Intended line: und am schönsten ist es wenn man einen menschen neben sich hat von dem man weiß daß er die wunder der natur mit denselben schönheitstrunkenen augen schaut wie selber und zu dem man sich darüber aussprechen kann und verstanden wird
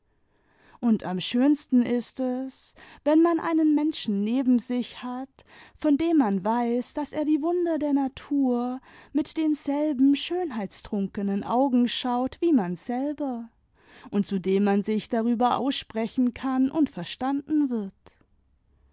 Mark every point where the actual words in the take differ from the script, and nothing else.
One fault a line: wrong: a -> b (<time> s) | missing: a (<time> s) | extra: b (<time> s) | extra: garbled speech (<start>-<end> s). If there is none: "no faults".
extra: man (12.5 s)